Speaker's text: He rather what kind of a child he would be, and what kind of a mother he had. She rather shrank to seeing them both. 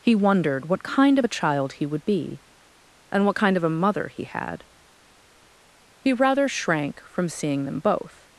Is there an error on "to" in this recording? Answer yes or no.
yes